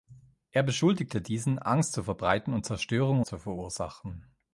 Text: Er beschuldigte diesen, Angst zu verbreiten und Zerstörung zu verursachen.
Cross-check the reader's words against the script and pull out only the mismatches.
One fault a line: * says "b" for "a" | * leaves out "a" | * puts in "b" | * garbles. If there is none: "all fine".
all fine